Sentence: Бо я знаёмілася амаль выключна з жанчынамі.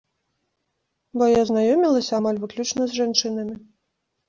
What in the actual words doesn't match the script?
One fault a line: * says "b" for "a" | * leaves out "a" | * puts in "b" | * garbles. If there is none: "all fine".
all fine